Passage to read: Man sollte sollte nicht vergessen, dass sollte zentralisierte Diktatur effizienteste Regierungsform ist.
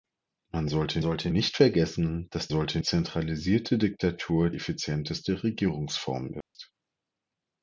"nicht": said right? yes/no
yes